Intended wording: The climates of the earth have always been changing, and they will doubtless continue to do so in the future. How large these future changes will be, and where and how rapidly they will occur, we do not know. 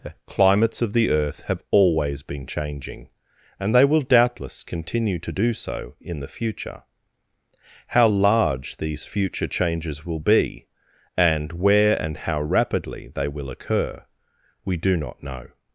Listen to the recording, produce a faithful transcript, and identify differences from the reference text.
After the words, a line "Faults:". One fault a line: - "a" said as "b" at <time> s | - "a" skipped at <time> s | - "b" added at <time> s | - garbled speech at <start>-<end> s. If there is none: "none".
The climates of the earth have always been changing, and they will doubtless continue to do so in the future. How large these future changes will be, and where and how rapidly they will occur, we do not know.
Faults:
none